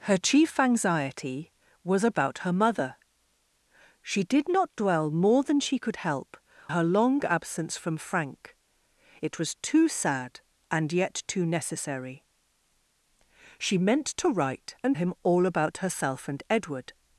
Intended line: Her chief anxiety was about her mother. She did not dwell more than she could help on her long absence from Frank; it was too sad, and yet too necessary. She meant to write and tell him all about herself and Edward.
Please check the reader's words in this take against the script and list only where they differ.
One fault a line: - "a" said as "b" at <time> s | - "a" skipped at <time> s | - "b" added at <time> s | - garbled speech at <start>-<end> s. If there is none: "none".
- "on" skipped at 6.4 s
- "tell" skipped at 15.0 s